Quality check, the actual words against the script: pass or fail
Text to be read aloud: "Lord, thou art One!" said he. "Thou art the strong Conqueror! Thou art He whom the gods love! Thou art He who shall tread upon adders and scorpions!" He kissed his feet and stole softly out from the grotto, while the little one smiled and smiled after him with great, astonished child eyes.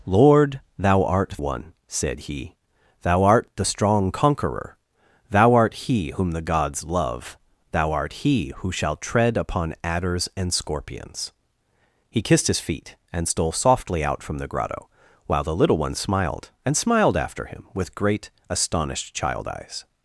pass